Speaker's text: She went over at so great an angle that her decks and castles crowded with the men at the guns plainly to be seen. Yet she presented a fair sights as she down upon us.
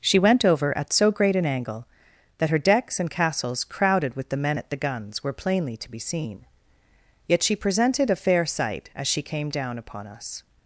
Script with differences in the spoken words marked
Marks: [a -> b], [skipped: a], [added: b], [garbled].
She went over at so great an angle that her decks and castles crowded with the men at the guns [added: were] plainly to be seen. Yet she presented a fair [sights -> sight] as she [added: came] down upon us.